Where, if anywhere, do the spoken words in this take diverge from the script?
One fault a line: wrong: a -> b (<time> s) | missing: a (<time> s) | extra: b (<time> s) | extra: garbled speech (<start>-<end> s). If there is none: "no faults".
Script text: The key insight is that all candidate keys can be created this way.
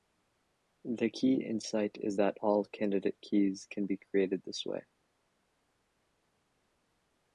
no faults